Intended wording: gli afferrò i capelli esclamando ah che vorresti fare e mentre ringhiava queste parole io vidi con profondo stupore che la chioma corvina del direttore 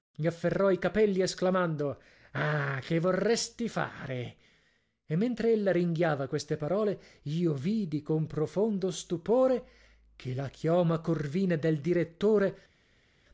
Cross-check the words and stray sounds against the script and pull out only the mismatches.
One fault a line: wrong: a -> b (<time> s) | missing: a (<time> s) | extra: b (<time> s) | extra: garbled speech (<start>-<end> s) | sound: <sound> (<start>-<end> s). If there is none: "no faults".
extra: ella (5.5 s)